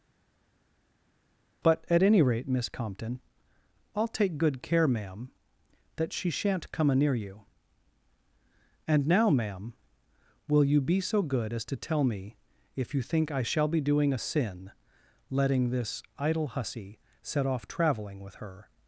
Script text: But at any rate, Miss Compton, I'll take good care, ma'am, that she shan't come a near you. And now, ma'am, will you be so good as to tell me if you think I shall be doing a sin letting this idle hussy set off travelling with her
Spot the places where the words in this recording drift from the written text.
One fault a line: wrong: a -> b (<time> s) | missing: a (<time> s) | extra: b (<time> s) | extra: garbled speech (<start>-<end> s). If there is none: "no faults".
no faults